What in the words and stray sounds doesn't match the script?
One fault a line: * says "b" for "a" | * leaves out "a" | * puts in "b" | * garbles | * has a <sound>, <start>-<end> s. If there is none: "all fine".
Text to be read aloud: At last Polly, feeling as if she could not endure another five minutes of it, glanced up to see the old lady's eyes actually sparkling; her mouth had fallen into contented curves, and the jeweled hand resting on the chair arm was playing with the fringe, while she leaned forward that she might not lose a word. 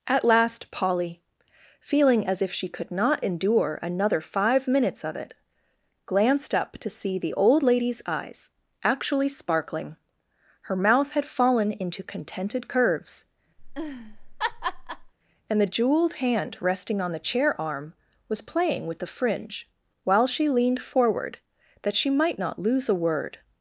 * has a laugh, 13.6-15.1 s